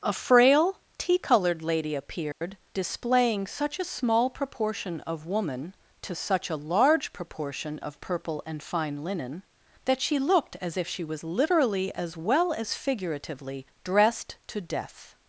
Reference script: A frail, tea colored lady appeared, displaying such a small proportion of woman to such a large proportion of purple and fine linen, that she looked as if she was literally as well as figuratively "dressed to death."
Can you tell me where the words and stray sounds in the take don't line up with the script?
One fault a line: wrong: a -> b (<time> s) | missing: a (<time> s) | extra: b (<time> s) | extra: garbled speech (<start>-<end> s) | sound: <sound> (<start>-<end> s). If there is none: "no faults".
sound: dropout (2.3-2.4 s)